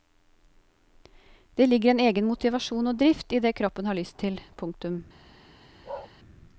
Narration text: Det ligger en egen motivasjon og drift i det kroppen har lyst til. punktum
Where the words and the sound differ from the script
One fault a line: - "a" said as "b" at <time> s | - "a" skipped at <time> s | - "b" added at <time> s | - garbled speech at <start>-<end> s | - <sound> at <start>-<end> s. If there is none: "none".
- bark at 5.8-6.1 s